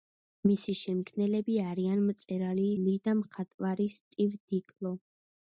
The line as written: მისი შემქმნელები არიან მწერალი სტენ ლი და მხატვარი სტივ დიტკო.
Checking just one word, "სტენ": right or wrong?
wrong